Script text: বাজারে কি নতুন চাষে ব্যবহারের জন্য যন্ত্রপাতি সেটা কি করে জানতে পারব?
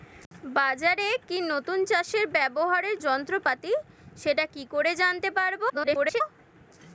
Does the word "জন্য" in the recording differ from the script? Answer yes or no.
yes